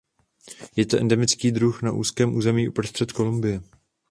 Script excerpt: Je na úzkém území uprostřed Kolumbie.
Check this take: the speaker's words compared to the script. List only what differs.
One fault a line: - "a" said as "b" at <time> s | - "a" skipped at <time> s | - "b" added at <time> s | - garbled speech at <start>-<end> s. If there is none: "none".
- "to endemický druh" added at 0.8 s